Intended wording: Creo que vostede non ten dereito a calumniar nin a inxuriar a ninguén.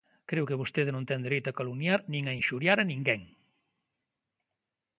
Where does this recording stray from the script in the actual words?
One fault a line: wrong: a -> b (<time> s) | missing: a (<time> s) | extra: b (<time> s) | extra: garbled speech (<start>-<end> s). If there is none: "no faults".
no faults